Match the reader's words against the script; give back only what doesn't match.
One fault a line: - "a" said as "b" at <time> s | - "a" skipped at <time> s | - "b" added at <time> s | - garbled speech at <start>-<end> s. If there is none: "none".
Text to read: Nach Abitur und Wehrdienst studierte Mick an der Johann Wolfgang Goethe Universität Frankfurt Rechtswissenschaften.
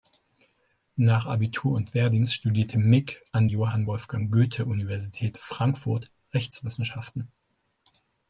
- "der" skipped at 3.5 s